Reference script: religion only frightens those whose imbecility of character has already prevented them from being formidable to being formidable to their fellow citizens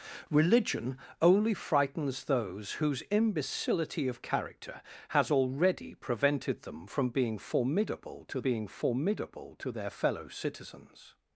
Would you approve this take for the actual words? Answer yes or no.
yes